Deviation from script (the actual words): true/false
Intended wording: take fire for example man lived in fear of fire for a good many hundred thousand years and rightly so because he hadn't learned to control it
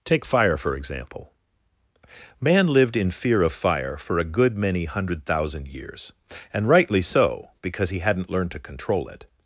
false